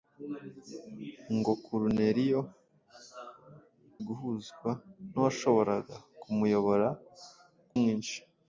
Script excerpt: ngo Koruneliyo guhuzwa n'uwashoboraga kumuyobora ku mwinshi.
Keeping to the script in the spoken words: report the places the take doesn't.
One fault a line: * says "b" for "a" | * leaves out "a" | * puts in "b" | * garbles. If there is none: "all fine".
all fine